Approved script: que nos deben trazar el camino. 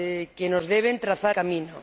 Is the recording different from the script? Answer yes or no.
yes